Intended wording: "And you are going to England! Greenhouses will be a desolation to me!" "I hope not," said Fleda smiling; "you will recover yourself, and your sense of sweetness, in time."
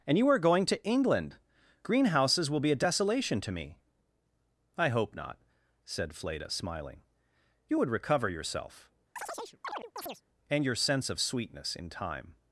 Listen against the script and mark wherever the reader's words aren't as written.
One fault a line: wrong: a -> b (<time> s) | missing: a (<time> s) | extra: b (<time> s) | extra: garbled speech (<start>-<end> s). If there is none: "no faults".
wrong: will -> would (7.8 s)